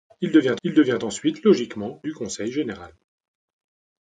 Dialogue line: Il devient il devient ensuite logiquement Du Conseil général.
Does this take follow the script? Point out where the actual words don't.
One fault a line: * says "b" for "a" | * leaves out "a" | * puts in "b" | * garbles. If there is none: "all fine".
all fine